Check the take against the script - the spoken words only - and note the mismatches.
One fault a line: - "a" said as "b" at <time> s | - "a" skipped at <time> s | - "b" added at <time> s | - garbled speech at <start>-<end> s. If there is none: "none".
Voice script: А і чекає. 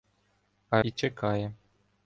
none